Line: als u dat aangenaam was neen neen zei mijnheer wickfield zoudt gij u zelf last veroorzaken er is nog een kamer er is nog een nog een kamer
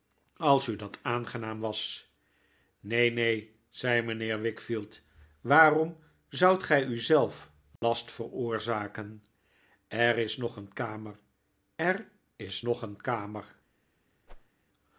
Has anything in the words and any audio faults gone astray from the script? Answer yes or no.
yes